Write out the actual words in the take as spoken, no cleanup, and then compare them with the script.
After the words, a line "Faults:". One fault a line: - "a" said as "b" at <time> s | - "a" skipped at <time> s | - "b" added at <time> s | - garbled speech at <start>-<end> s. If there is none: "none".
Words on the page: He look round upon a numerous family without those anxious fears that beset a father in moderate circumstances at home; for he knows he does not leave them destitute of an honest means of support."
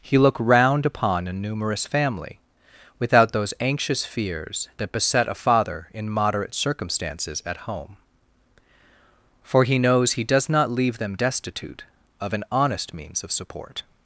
He look round upon a numerous family without those anxious fears that beset a father in moderate circumstances at home; for he knows he does not leave them destitute of an honest means of support."
Faults:
none